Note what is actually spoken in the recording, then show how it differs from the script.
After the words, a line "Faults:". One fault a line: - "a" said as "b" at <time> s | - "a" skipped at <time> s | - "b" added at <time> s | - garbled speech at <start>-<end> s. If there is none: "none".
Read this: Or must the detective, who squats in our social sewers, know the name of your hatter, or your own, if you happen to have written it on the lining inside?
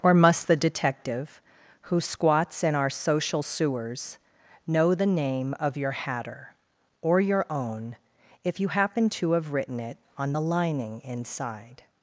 Or must the detective, who squats in our social sewers, know the name of your hatter, or your own, if you happen to have written it on the lining inside?
Faults:
none